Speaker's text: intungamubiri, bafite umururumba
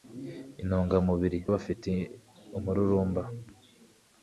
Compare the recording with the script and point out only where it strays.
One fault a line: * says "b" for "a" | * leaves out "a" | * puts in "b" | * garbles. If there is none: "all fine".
all fine